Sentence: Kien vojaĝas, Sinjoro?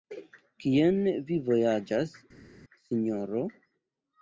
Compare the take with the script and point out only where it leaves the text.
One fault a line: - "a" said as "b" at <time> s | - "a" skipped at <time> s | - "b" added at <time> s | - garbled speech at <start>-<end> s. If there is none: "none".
- "vi" added at 1.3 s